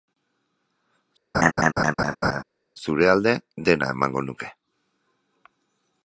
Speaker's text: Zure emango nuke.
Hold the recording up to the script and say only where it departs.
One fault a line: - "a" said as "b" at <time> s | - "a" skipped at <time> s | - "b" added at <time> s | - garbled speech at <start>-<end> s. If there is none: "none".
- "alde dena" added at 3.1 s